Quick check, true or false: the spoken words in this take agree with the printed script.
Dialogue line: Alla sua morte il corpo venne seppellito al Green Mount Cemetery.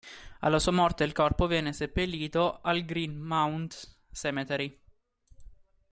true